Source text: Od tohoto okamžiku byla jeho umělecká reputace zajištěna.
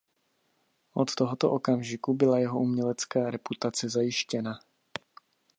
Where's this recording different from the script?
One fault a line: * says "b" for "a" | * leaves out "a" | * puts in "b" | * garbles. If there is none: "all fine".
all fine